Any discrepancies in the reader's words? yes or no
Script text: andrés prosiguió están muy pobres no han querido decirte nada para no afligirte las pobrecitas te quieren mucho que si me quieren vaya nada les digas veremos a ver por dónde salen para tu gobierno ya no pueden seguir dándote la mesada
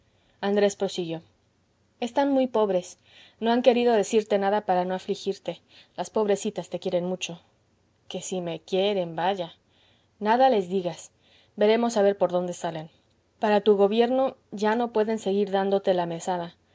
no